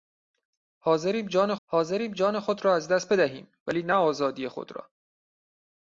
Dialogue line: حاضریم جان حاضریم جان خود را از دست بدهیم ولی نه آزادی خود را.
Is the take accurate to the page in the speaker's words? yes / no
yes